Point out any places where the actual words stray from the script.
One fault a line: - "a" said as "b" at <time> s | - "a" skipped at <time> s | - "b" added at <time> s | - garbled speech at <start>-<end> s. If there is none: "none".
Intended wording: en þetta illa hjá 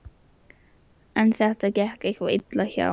- "gekk eitthvað" added at 1.8 s